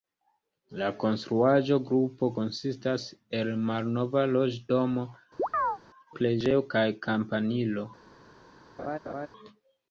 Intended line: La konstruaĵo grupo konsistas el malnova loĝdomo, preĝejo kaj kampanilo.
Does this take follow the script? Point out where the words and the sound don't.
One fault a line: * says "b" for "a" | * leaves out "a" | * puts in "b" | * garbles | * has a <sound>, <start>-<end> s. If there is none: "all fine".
* has a chirp, 5.4-5.8 s
* has a laugh, 8.8-9.3 s